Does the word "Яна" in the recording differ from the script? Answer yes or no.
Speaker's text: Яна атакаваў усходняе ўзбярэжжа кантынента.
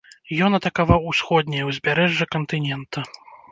yes